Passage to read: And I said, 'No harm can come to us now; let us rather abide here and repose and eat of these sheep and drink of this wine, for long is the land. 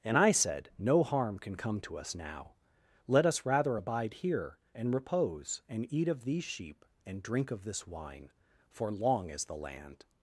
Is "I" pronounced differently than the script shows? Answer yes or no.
no